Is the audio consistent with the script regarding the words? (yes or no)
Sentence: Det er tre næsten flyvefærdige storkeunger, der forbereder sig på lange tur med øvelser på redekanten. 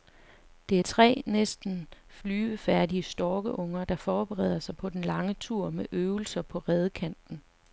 no